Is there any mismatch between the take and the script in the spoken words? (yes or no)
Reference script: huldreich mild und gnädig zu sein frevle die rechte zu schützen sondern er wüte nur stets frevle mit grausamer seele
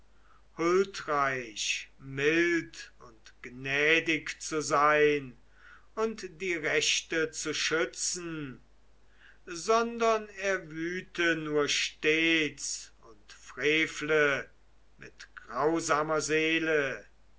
yes